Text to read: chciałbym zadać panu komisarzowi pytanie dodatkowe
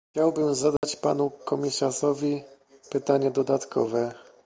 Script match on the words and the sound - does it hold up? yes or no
no